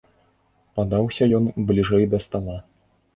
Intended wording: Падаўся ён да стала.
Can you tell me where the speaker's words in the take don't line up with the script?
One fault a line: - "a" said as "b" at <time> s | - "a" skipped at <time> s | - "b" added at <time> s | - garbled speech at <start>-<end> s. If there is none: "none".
- "бліжэй" added at 1.7 s